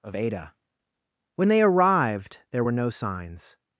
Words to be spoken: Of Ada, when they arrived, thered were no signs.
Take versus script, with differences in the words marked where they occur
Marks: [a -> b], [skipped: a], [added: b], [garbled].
Of Ada, when they arrived, [thered -> there] were no signs.